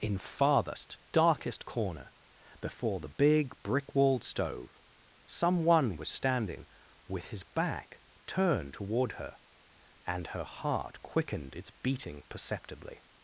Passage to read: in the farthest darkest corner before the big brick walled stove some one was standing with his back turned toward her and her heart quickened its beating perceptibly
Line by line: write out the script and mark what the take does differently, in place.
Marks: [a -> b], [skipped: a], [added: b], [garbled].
in [skipped: the] farthest darkest corner before the big brick walled stove some one was standing with his back turned toward her and her heart quickened its beating perceptibly